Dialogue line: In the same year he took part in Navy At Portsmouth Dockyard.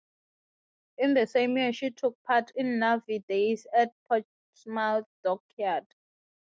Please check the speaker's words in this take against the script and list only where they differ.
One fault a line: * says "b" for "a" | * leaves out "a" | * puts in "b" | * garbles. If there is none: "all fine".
* says "she" for "he"
* puts in "Days"